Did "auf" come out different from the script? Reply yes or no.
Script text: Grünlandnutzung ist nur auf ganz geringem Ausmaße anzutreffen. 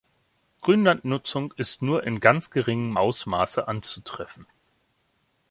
yes